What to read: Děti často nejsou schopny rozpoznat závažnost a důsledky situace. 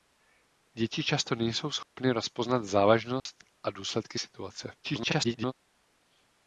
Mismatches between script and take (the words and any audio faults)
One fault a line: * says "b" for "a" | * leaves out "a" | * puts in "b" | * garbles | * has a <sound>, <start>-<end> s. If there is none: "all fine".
* has a dropout, 1.8-2.0 s
* has a dropout, 3.2-3.3 s
* garbles